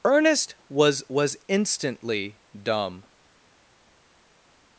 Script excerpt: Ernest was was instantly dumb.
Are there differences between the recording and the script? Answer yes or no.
no